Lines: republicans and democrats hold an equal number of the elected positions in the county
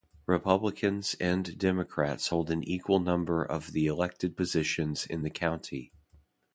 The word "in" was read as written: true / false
true